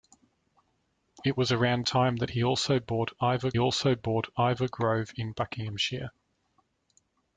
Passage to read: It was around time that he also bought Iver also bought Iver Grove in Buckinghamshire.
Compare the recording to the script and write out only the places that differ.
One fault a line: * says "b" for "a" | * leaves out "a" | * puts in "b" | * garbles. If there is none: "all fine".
all fine